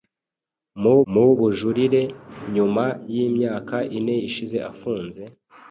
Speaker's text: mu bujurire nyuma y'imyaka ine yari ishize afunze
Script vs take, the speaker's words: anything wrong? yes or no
yes